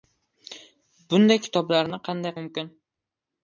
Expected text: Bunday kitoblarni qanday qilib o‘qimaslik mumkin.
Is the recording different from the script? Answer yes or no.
yes